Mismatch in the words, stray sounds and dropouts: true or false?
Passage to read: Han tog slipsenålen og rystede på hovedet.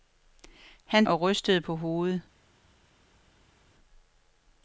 true